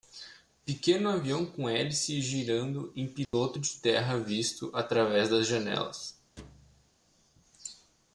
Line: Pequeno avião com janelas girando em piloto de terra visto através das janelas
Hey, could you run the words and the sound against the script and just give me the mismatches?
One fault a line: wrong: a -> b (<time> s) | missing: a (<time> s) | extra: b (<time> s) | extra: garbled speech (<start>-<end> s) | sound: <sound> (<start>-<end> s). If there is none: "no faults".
wrong: janelas -> hélice (1.7 s)
sound: dropout (3.2-3.3 s)
sound: thud (6.4-6.9 s)